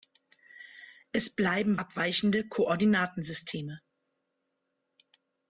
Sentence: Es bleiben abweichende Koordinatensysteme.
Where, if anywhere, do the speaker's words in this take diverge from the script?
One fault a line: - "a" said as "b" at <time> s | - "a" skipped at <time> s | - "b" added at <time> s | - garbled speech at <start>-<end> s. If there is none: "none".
none